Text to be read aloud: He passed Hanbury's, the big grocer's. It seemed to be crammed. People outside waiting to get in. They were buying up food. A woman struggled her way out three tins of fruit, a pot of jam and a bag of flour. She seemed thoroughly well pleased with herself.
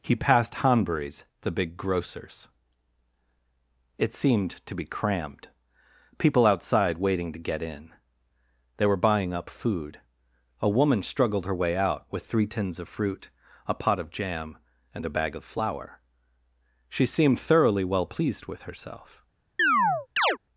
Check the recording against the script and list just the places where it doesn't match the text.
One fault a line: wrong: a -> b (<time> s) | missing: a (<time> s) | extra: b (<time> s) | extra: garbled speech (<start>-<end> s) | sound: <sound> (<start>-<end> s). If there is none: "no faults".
extra: with (12.1 s)
sound: chirp (19.6-20.4 s)